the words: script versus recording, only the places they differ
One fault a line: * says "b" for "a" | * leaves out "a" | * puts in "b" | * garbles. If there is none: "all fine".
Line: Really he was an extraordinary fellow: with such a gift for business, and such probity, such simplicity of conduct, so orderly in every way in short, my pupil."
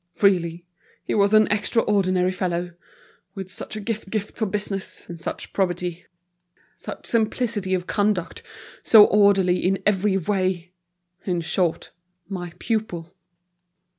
* puts in "gift"